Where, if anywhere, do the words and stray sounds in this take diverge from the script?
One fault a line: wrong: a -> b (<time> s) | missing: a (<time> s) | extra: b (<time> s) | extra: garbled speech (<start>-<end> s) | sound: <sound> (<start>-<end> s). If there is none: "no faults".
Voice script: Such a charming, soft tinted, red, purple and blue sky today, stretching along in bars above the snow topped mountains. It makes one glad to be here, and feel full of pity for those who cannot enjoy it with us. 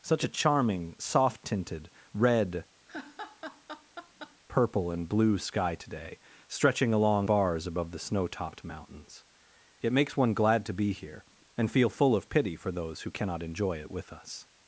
sound: laugh (2.9-4.4 s)
missing: in (7.3 s)